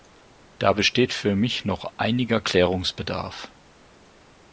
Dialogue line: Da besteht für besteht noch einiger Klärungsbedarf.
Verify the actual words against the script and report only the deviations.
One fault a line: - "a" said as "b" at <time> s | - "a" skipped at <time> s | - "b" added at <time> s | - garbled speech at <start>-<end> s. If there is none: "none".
- "besteht" said as "mich" at 1.4 s